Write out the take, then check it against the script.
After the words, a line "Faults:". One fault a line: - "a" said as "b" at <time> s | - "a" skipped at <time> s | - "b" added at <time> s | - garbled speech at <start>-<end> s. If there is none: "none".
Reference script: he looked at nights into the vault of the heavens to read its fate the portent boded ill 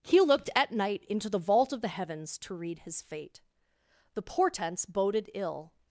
he looked at night into the vault of the heavens to read his fate the portents boded ill
Faults:
- "nights" said as "night" at 0.7 s
- "its" said as "his" at 2.8 s
- "portent" said as "portents" at 4.2 s